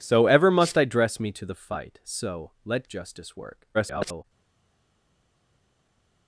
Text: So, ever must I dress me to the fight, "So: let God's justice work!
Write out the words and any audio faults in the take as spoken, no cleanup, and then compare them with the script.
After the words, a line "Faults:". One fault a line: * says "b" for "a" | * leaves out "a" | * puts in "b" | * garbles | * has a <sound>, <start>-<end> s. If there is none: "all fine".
So, ever must I dress me to the fight, "So: let Justice work! [garbled]
Faults:
* leaves out "God's"
* garbles